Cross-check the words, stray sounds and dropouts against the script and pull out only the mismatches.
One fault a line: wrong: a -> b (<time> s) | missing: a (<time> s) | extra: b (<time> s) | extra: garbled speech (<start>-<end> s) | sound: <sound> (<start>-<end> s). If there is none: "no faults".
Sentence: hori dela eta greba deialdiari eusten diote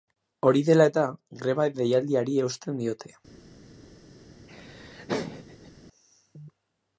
sound: laugh (4.5-5.7 s)